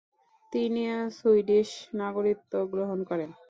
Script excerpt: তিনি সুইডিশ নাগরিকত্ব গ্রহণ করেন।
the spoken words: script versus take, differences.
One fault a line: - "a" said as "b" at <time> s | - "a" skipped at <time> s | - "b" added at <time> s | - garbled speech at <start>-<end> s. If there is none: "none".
none